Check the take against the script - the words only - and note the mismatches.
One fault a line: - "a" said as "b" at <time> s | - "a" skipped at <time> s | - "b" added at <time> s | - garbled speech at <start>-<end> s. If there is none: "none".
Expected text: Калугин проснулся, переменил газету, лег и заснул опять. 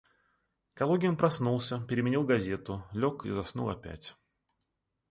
none